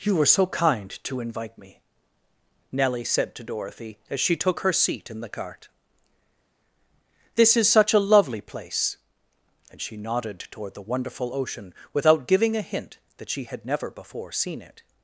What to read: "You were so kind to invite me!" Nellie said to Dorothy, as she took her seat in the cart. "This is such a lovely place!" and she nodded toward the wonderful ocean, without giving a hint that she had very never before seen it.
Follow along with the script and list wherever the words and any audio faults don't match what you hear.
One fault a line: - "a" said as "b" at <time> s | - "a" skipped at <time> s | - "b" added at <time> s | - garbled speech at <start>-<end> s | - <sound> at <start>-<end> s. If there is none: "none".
- "very" skipped at 13.6 s